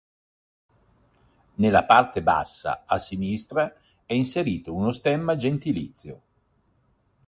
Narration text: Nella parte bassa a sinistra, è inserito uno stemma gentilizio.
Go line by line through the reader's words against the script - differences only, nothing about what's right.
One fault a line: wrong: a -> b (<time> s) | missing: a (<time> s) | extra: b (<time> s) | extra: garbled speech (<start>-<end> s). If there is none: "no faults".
no faults